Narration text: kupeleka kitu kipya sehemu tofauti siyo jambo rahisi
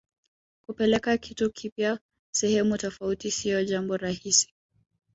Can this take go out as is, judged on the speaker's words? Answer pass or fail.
pass